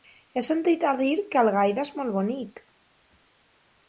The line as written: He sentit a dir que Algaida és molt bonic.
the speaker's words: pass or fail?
pass